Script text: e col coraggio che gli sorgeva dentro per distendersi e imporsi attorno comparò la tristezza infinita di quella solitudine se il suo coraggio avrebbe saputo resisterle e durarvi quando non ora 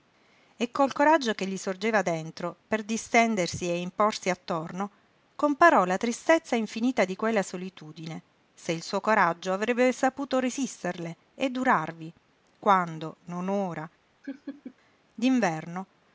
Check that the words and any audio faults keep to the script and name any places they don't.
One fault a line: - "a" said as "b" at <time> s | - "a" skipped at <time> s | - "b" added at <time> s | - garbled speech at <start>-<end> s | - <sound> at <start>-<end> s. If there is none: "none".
- laugh at 14.2-14.8 s